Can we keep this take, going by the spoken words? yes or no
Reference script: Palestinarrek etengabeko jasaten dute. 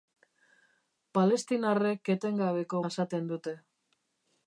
yes